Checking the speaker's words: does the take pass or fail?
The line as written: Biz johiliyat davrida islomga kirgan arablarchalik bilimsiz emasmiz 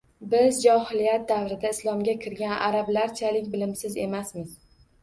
pass